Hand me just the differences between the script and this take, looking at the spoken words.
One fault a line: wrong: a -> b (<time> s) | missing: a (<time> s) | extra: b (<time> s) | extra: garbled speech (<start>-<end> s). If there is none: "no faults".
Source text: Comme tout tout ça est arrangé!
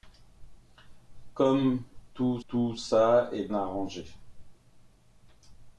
no faults